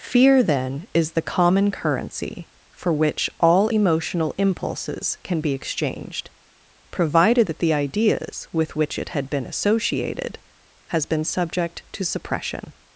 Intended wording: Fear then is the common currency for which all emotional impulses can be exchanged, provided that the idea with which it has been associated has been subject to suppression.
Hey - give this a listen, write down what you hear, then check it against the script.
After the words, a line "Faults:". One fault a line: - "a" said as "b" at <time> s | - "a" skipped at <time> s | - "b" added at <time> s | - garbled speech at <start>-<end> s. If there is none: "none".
Fear then is the common currency for which all emotional impulses can be exchanged, provided that the ideas with which it had been associated has been subject to suppression.
Faults:
- "idea" said as "ideas" at 7.7 s
- "has" said as "had" at 9.1 s